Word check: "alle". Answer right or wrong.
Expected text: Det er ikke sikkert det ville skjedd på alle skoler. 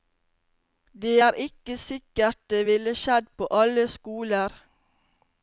right